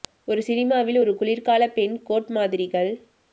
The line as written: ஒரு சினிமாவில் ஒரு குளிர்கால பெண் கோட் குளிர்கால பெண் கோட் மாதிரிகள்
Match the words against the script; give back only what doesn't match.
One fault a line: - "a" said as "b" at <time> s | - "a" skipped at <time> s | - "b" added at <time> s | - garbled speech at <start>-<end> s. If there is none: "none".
- "குளிர்கால பெண் கோட்" skipped at 2.3 s